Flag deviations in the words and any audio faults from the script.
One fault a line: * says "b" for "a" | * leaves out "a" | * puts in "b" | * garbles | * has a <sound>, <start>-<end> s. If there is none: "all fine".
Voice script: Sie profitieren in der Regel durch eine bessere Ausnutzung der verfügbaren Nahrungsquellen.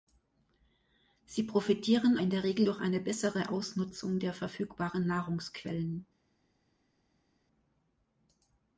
all fine